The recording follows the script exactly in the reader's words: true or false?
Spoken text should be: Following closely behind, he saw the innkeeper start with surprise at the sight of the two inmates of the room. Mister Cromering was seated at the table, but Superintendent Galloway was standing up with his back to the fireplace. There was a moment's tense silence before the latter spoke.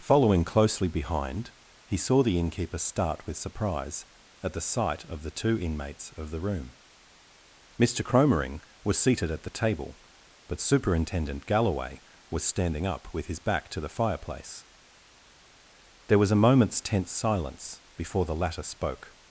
true